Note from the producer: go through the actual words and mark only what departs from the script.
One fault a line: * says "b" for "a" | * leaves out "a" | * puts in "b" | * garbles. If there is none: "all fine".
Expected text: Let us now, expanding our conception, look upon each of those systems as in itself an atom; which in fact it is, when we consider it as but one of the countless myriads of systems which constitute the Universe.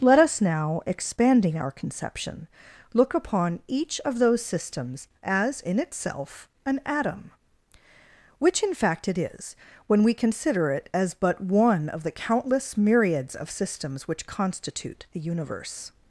all fine